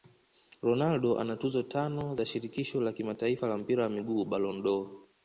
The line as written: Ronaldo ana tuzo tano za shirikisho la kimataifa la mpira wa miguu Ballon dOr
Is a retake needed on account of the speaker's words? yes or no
no